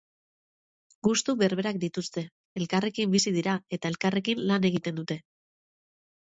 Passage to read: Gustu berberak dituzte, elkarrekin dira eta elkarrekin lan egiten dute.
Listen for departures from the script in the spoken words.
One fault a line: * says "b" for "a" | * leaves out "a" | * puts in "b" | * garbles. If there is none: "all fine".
* puts in "bizi"